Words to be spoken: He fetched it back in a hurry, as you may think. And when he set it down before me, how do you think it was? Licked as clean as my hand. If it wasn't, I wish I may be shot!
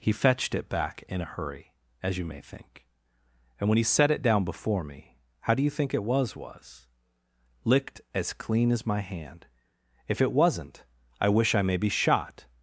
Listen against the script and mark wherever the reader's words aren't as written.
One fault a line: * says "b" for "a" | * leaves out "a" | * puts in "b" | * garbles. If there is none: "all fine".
* puts in "was"